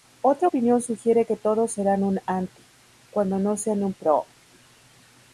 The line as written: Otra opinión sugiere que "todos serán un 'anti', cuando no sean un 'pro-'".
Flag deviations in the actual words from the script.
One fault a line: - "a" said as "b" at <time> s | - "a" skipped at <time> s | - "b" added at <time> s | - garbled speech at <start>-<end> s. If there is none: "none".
none